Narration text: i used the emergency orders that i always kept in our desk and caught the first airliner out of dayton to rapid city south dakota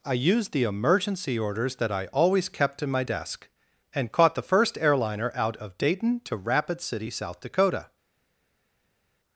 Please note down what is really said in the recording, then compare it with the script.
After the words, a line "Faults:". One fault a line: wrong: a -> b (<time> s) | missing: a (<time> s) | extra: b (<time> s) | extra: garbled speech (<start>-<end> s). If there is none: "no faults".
i used the emergency orders that i always kept in my desk and caught the first airliner out of dayton to rapid city south dakota
Faults:
wrong: our -> my (2.9 s)